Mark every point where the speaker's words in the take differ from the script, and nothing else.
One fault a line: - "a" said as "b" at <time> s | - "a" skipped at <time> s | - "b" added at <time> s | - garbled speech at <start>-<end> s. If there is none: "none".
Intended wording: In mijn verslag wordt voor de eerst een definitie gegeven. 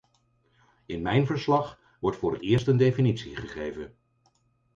- "de" said as "het" at 2.3 s